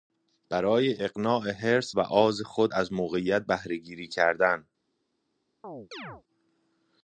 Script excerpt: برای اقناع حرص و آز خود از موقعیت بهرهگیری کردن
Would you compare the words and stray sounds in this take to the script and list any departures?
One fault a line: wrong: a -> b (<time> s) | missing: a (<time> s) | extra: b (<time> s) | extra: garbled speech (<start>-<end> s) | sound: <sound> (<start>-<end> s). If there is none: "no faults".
sound: chirp (5.6-6.2 s)